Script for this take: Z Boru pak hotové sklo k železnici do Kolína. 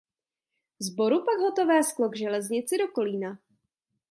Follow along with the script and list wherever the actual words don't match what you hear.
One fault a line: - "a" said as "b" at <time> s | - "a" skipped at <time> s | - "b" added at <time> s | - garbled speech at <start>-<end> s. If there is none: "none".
none